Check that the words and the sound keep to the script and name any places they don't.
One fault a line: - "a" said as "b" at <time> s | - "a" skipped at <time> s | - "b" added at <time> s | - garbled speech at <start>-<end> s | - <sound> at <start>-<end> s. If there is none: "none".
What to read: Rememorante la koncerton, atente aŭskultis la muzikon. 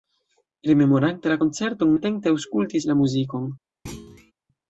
- thud at 3.9-4.3 s